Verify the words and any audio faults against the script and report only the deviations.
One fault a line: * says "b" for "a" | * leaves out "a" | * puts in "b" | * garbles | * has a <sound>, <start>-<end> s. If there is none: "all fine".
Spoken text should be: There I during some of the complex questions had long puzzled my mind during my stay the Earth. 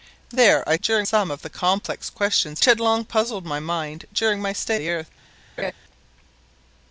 * has a laugh, 5.6-5.7 s